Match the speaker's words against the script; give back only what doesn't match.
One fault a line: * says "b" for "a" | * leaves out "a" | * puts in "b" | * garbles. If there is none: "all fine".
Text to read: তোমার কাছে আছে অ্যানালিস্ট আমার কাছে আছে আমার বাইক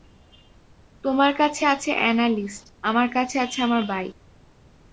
all fine